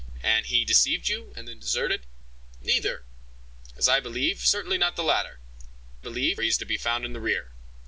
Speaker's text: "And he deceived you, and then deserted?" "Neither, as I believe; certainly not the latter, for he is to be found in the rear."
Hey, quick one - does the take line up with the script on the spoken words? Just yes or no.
no